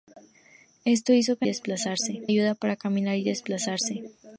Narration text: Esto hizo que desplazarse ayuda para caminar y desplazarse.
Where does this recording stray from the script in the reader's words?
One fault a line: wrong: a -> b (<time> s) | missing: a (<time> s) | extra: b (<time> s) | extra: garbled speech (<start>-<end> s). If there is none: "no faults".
no faults